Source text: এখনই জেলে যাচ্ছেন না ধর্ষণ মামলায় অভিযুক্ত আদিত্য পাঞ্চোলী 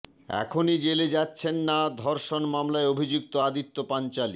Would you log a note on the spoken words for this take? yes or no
no